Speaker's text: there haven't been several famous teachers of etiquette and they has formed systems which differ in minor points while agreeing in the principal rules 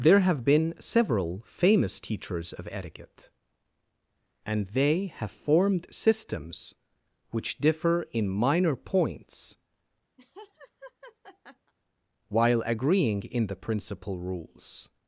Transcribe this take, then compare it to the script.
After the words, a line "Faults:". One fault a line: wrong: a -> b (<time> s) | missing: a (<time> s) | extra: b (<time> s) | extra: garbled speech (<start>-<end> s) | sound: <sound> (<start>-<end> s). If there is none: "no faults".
there have been several famous teachers of etiquette and they have formed systems which differ in minor points while agreeing in the principal rules
Faults:
wrong: haven't -> have (0.2 s)
wrong: has -> have (5.2 s)
sound: laugh (10.2-11.7 s)